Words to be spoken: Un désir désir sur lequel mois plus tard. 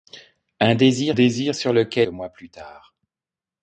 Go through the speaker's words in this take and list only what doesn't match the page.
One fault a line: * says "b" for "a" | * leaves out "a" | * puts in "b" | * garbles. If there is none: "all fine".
all fine